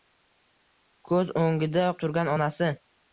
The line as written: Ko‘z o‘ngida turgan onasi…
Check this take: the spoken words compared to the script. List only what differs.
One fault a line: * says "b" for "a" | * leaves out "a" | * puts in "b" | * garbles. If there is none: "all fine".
all fine